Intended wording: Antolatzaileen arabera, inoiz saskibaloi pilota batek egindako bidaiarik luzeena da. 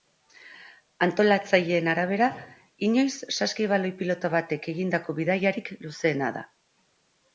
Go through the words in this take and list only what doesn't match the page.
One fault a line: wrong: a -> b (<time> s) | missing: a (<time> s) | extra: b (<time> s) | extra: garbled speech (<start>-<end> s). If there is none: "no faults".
no faults